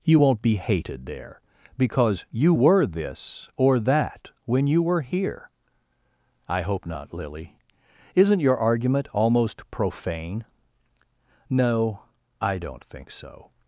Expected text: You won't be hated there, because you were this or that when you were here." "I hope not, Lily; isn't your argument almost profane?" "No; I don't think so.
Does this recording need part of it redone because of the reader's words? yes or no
no